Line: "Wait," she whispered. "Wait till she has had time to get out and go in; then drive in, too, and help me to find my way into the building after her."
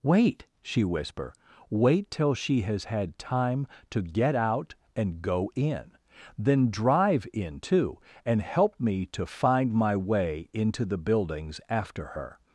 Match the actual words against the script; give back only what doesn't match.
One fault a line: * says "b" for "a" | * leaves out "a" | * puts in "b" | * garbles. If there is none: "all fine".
* says "whisper" for "whispered"
* says "buildings" for "building"